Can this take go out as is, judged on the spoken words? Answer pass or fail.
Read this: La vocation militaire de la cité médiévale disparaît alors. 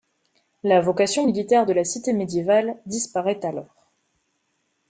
pass